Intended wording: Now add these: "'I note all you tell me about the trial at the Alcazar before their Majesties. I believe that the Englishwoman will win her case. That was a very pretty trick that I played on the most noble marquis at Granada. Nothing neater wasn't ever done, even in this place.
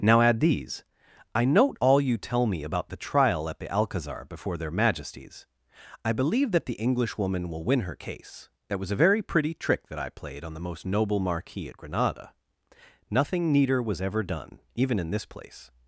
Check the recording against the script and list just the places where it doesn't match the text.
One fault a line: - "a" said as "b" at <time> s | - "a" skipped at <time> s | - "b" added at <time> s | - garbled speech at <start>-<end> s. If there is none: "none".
- "wasn't" said as "was" at 13.8 s